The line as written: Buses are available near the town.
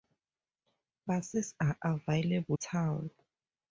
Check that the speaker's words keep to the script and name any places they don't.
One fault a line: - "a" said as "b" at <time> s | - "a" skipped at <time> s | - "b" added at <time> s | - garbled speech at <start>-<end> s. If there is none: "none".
- "near the" skipped at 2.6 s